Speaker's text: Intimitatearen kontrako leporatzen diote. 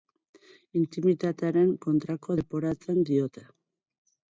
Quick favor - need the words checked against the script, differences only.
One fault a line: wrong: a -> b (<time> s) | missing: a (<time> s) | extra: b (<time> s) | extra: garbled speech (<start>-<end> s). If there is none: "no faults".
no faults